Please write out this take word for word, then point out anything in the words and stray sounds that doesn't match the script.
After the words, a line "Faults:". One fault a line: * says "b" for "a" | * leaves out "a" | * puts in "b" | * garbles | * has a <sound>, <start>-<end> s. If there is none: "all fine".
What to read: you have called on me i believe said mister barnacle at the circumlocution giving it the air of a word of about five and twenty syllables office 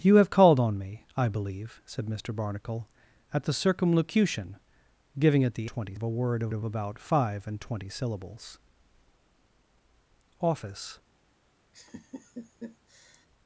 you have called on me i believe said mister barnacle at the circumlocution giving it the twenty of a word of of about five and twenty syllables office
Faults:
* says "twenty" for "air"
* puts in "of"
* has a laugh, 11.7-13.3 s